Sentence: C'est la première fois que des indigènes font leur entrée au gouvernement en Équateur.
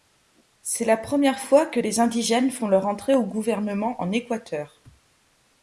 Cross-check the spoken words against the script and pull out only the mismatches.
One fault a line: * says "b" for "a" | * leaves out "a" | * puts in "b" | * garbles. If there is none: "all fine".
all fine